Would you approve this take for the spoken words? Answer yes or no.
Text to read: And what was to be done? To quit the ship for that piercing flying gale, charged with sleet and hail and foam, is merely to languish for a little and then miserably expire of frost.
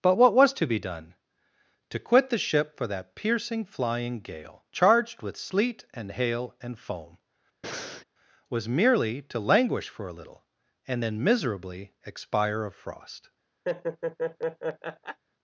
no